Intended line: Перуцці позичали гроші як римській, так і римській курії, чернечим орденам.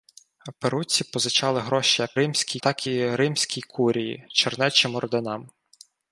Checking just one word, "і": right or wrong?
right